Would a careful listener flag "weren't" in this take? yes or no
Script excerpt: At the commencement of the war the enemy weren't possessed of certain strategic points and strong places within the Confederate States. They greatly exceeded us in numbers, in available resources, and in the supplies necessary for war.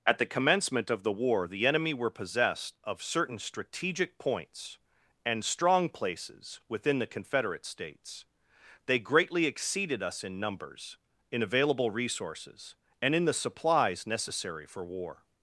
yes